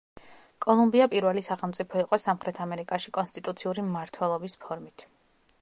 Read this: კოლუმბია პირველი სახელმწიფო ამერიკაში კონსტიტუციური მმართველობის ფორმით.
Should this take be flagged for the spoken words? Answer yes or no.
yes